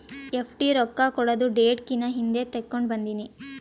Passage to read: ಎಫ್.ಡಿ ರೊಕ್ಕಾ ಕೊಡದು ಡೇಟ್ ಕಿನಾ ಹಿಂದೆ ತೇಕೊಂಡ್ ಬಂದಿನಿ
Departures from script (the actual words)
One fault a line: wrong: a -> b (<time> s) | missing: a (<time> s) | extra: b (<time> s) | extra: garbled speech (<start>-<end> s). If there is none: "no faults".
no faults